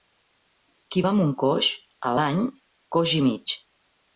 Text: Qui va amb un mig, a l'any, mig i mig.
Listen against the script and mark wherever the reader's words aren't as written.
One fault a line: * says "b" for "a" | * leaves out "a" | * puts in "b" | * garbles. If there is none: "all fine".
* says "coix" for "mig"
* says "coix" for "mig"